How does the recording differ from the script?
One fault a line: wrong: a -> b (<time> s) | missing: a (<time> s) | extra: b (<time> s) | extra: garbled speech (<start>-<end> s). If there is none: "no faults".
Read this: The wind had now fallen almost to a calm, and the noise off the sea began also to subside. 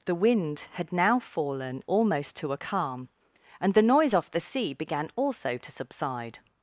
no faults